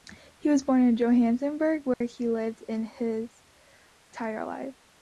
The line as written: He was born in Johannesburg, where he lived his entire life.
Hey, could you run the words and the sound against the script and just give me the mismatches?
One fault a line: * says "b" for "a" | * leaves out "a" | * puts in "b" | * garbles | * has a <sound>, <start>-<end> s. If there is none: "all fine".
* has a dropout, 1.9-2.0 s